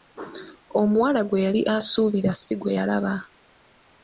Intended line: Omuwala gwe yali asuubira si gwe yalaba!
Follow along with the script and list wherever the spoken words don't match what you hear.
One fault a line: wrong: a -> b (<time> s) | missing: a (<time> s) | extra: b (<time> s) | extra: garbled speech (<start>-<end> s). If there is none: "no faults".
no faults